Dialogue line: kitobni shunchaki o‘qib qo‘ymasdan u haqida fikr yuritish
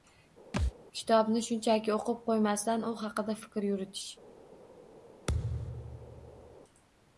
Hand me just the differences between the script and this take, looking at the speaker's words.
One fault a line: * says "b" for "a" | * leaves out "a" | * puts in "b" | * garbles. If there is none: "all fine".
all fine